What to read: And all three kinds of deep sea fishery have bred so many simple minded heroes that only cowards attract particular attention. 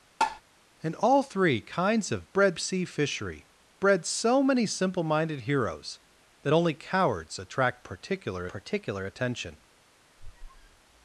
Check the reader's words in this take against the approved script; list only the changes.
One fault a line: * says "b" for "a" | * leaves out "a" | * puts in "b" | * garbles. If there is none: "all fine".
* says "bred" for "deep"
* leaves out "have"
* puts in "particular"